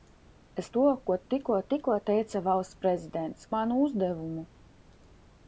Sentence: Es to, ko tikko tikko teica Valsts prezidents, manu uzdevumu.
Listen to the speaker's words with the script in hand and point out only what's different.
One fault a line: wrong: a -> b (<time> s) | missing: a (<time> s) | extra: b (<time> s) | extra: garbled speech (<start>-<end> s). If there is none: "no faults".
no faults